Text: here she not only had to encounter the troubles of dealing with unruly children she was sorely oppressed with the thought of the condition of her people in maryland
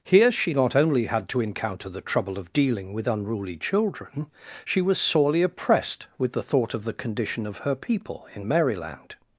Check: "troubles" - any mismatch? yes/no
yes